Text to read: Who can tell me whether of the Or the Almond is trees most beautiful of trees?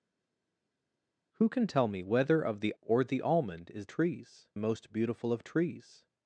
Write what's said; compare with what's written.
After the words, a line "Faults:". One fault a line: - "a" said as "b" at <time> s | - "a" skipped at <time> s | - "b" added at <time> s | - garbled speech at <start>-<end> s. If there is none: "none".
Who can tell me whether of the Or the Almond is trees most beautiful of trees?
Faults:
none